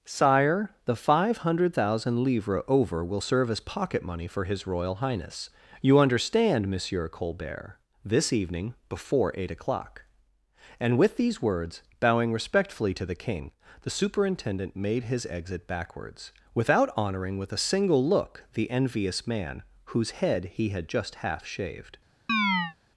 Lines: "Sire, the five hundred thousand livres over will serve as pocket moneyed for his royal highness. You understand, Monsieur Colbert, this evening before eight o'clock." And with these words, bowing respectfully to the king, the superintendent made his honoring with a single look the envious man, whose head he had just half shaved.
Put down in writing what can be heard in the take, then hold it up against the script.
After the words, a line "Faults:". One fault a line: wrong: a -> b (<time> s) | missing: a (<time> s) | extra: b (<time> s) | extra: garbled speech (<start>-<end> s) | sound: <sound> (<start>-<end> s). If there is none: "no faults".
"Sire, the five hundred thousand livres over will serve as pocket money for his royal highness. You understand, Monsieur Colbert, this evening before eight o'clock." And with these words, bowing respectfully to the king, the superintendent made his exit backwards, without honoring with a single look the envious man, whose head he had just half shaved.
Faults:
wrong: moneyed -> money (4.0 s)
extra: exit backwards without (15.3 s)
sound: chirp (22.3-22.8 s)